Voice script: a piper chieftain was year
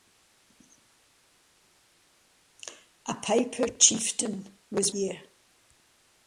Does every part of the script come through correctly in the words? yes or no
yes